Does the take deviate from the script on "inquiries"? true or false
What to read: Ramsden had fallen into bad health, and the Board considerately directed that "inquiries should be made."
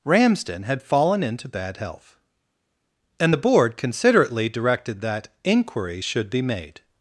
true